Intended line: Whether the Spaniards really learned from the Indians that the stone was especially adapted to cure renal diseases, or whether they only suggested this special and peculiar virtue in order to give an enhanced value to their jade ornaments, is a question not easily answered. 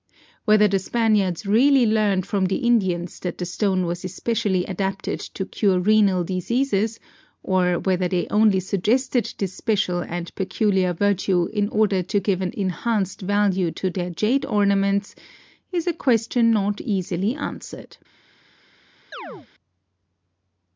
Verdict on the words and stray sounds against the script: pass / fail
fail